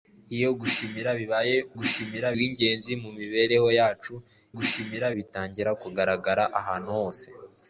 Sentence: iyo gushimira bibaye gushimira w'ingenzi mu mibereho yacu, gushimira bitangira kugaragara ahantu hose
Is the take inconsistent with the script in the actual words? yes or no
no